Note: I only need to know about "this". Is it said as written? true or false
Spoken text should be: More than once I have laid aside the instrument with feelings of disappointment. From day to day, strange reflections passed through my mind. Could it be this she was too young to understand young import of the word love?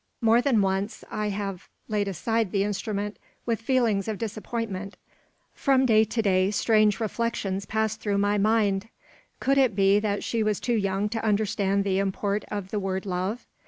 false